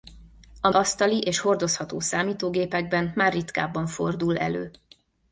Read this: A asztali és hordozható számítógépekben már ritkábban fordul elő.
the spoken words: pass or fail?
pass